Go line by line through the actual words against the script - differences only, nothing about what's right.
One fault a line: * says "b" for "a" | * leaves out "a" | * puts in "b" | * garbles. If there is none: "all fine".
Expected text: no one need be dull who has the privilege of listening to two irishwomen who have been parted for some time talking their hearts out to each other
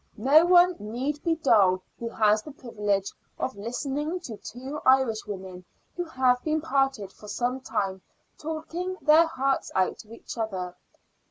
all fine